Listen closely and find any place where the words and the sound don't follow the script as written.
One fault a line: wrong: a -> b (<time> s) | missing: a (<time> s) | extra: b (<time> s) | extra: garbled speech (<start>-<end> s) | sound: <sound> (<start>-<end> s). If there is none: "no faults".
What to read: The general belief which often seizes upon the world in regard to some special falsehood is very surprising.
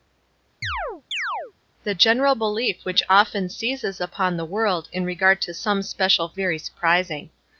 sound: chirp (0.6-1.5 s)
missing: falsehood is (6.4 s)